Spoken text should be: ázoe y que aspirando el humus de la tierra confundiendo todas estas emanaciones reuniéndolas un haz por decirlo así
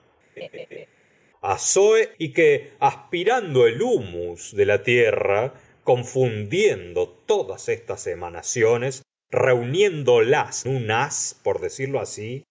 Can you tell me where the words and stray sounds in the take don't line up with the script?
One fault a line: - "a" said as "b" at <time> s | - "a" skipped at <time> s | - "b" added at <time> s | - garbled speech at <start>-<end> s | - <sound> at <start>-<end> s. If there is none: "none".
- laugh at 0.4-0.9 s